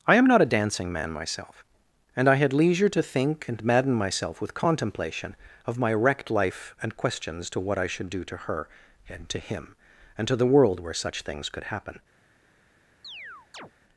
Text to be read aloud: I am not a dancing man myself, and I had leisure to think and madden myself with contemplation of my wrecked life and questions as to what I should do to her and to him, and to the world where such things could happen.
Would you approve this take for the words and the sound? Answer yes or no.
no